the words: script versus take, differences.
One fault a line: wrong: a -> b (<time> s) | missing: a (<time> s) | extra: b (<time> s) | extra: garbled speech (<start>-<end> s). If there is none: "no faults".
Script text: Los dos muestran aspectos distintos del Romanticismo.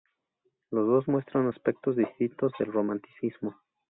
no faults